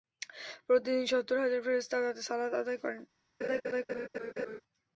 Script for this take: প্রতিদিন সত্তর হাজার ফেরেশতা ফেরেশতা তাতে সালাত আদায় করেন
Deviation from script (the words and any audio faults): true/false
true